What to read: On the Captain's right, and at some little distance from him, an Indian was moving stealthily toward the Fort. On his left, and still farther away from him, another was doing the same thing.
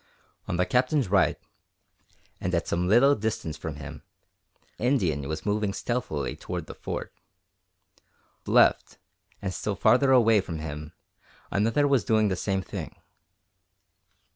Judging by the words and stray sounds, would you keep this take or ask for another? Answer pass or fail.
fail